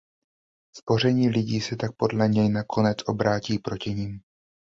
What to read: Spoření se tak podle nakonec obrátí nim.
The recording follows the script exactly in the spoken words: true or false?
false